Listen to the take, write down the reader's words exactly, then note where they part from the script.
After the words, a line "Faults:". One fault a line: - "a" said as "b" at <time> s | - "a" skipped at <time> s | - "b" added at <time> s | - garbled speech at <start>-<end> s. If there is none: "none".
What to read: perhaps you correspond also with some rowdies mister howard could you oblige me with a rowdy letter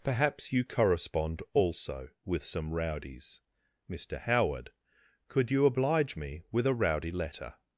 perhaps you correspond also with some rowdies mister howard could you oblige me with a rowdy letter
Faults:
none